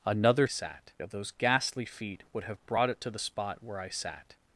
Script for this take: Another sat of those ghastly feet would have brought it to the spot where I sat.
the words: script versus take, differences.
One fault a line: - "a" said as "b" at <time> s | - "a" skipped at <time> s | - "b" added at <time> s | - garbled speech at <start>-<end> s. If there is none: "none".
none